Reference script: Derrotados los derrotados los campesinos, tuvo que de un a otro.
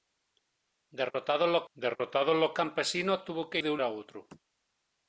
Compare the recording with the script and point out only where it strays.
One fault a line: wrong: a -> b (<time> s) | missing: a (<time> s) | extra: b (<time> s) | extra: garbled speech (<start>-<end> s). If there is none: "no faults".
no faults